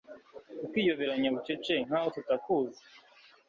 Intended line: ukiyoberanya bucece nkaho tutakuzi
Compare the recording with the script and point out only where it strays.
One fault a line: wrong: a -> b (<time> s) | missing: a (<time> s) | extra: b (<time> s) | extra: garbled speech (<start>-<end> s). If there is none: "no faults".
no faults